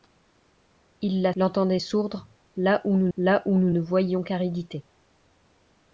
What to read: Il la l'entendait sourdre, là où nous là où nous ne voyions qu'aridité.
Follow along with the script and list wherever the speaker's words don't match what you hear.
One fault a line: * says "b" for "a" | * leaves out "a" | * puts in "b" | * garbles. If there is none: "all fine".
all fine